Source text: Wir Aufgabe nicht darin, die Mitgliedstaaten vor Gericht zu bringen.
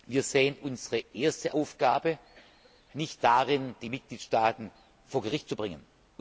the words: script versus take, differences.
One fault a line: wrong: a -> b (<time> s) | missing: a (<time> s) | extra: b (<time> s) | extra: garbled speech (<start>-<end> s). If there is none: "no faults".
extra: sehen unsere erste (0.2 s)